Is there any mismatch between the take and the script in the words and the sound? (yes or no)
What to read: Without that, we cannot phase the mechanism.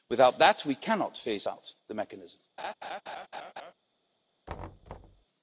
yes